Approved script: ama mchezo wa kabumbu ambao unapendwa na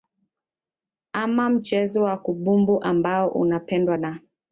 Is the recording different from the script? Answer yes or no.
no